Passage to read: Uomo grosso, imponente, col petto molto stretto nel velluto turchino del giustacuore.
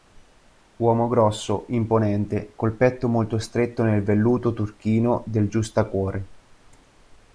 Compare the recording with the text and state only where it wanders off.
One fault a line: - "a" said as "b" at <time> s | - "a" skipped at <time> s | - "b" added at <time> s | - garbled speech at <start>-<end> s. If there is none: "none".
none